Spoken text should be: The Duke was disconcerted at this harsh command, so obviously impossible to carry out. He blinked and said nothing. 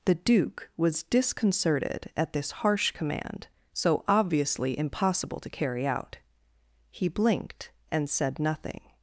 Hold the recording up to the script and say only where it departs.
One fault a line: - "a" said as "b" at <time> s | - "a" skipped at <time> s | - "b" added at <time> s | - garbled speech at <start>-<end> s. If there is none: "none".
none